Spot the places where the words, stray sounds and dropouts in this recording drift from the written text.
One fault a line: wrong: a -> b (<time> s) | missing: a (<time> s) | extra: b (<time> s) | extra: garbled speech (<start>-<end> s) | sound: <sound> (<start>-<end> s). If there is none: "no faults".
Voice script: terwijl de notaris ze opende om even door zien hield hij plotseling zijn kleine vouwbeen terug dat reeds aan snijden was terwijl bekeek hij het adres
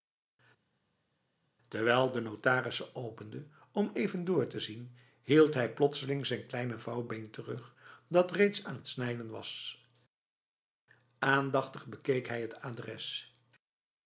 extra: te (4.5 s)
extra: het (8.7 s)
wrong: terwijl -> aandachtig (11.2 s)